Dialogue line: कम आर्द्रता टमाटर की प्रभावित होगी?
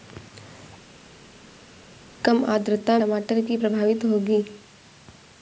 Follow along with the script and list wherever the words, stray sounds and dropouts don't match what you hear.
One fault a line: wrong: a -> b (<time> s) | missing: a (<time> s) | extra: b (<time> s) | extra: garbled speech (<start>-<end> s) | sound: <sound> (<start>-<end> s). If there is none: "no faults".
no faults